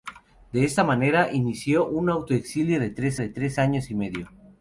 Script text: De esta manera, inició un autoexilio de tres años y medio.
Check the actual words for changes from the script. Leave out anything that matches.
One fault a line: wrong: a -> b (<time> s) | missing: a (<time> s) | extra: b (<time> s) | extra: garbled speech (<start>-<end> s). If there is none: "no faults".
extra: de tres (3.2 s)